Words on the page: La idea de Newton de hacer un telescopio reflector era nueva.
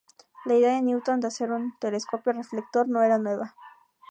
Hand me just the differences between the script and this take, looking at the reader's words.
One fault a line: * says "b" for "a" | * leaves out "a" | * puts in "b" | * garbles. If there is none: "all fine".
* puts in "no"